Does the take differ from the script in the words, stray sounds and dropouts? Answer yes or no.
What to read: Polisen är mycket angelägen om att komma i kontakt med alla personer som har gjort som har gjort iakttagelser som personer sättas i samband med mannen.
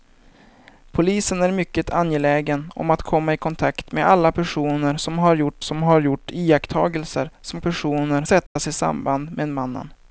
yes